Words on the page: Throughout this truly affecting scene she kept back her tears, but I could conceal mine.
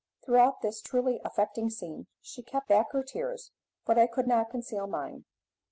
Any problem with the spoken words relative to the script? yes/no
yes